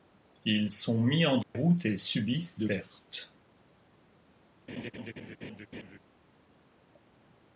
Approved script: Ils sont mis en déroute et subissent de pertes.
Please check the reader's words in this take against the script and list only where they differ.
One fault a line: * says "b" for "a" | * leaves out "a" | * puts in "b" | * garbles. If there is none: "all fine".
all fine